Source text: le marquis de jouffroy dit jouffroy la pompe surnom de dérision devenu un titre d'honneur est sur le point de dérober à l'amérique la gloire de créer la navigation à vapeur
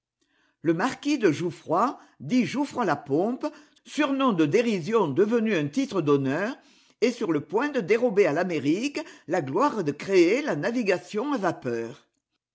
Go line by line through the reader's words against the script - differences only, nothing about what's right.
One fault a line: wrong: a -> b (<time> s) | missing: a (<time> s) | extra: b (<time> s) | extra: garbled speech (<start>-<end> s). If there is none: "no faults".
no faults